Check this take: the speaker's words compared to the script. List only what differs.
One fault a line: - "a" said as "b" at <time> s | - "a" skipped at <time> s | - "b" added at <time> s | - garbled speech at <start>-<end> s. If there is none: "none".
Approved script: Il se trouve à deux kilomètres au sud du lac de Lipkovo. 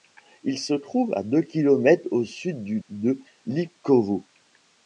- "lac" skipped at 2.8 s